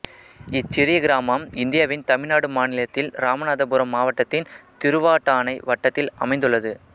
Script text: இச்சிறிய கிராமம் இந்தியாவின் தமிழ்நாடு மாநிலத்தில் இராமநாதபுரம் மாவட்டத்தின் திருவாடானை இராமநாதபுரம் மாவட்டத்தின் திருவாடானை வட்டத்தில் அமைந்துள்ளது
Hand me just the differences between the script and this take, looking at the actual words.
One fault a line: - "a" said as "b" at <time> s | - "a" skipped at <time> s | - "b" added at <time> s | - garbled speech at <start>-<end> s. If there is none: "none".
- "இராமநாதபுரம் மாவட்டத்தின் திருவாடானை" skipped at 5.5 s